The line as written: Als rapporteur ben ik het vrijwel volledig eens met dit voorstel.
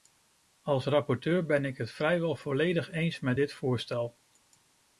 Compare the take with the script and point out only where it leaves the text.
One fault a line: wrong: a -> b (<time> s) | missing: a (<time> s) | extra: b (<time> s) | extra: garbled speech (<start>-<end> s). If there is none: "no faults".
no faults